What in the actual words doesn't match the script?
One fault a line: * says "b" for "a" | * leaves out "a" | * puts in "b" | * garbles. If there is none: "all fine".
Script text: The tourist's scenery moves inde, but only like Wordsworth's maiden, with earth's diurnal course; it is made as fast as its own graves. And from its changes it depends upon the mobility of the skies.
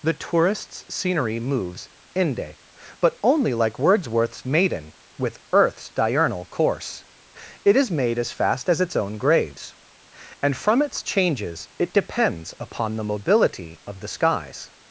all fine